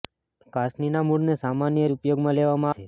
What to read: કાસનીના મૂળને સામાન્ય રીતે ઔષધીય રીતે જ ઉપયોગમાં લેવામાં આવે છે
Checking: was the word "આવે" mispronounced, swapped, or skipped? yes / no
yes